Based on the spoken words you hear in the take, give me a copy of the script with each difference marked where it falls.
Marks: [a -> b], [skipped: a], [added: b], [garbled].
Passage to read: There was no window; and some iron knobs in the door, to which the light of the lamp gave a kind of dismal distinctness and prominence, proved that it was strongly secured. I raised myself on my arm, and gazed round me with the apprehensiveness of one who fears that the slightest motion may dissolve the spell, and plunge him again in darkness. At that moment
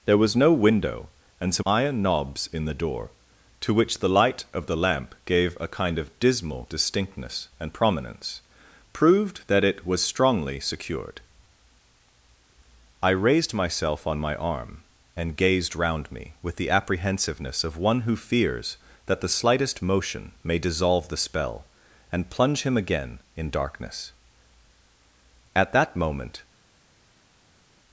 There was no window; and some iron knobs in the door, to which the light of the lamp gave a kind of dismal distinctness and prominence, proved that it was strongly secured. I raised myself on my arm, and gazed round me with the apprehensiveness of one who fears that the slightest motion may dissolve the spell, and plunge him again in darkness. At that moment